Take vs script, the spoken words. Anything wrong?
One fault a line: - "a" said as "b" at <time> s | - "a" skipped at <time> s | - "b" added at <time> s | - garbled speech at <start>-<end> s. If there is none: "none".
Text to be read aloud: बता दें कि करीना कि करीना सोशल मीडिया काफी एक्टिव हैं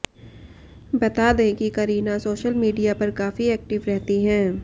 - "कि करीना" skipped at 2.2 s
- "पर" added at 3.0 s
- "रहती" added at 3.9 s